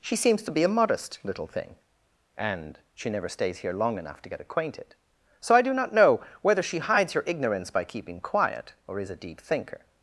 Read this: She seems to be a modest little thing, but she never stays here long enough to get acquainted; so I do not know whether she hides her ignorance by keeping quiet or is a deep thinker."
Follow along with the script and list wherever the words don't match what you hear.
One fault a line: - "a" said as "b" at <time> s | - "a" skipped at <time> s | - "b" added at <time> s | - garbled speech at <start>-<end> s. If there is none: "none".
- "but" said as "and" at 2.4 s